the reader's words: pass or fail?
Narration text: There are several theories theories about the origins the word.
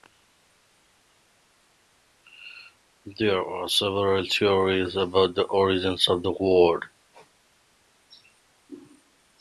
fail